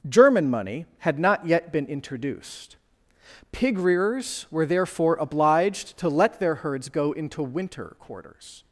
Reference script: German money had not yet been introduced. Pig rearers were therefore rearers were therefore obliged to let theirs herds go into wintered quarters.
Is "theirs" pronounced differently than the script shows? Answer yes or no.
yes